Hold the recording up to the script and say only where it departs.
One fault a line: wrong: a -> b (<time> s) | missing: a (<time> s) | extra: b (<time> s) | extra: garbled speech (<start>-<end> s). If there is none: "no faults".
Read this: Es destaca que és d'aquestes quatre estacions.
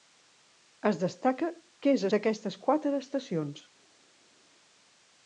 no faults